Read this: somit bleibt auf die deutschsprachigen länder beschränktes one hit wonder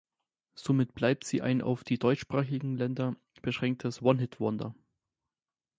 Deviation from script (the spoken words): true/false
true